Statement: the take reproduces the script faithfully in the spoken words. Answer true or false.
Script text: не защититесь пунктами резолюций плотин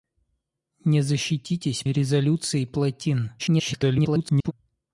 false